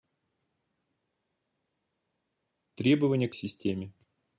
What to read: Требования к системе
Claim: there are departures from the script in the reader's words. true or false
false